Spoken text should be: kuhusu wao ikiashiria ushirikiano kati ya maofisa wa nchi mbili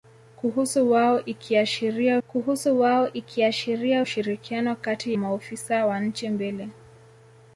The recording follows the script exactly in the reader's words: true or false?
false